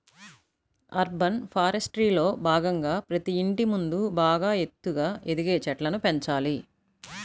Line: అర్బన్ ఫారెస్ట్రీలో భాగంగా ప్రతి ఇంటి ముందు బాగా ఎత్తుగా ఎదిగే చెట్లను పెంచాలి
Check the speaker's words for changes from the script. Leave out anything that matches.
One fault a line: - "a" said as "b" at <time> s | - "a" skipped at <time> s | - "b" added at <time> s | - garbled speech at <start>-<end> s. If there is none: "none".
none